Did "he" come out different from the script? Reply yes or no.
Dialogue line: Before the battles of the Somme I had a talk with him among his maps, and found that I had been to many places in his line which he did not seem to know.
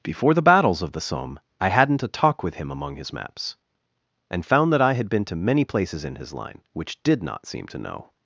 yes